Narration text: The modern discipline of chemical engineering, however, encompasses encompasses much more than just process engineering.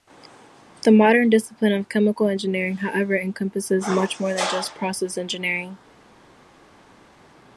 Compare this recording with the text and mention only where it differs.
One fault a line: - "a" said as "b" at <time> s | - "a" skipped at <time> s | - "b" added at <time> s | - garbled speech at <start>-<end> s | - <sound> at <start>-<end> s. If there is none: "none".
- "encompasses" skipped at 3.9 s